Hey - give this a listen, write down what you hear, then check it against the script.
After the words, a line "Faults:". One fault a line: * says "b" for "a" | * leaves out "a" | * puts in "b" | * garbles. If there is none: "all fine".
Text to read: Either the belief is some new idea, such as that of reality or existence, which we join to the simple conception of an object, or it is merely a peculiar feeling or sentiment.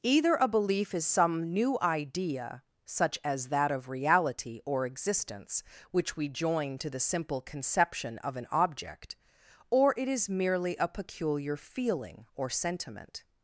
Either a belief is some new idea, such as that of reality or existence, which we join to the simple conception of an object, or it is merely a peculiar feeling or sentiment.
Faults:
* says "a" for "the"